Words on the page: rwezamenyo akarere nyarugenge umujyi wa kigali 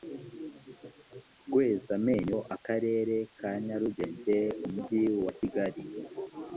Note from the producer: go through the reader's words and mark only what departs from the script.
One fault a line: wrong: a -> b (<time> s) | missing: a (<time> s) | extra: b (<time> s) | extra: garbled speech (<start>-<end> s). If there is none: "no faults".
extra: ka (3.4 s)